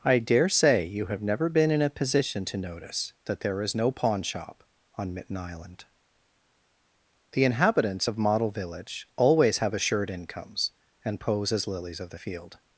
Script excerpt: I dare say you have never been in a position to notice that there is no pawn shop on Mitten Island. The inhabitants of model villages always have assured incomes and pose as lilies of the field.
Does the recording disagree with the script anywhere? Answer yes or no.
yes